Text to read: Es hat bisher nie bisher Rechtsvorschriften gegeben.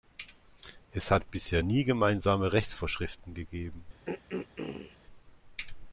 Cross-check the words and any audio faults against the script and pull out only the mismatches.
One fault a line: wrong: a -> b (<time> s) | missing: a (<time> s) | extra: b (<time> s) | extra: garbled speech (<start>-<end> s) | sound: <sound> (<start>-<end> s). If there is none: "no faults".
wrong: bisher -> gemeinsame (1.8 s)
sound: throat clearing (4.1-5.0 s)